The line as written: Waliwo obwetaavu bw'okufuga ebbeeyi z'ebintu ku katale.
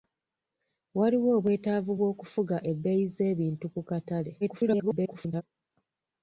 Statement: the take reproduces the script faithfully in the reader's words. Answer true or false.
false